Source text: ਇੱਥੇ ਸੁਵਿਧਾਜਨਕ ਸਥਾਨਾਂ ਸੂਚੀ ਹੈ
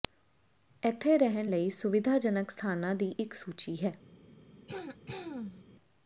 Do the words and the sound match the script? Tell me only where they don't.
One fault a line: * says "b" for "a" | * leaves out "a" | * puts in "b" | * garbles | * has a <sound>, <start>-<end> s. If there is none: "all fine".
* puts in "ਰਹਿਣ ਲਈ"
* puts in "ਦੀ ਇੱਕ"
* has a throat clearing, 4.7-5.6 s